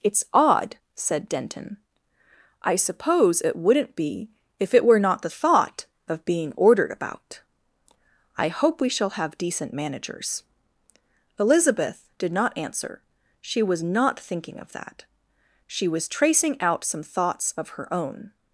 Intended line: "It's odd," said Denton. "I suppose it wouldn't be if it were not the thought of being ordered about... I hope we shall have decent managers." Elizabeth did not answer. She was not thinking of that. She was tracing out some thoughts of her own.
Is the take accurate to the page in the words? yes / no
yes